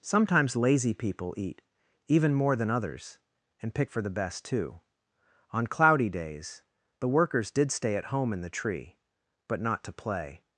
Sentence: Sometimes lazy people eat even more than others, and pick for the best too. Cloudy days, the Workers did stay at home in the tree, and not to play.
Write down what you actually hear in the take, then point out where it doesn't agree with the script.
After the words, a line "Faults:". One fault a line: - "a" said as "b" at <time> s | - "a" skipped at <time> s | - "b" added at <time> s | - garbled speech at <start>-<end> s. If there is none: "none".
Sometimes lazy people eat even more than others, and pick for the best too. On cloudy days, the Workers did stay at home in the tree, but not to play.
Faults:
- "On" added at 5.5 s
- "and" said as "but" at 9.5 s